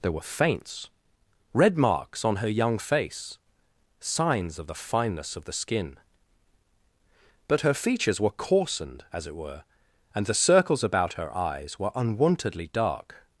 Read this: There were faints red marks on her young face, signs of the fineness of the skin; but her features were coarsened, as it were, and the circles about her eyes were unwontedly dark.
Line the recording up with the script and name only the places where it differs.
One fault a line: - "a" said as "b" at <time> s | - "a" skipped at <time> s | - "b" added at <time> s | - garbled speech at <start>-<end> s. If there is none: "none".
none